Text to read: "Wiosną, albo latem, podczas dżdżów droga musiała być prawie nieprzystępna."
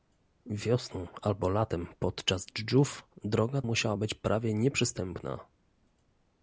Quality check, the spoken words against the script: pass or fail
pass